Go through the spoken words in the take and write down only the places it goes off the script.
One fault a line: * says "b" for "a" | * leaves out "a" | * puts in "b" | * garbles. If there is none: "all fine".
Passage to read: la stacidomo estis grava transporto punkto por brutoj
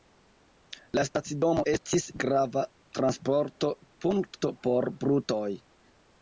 all fine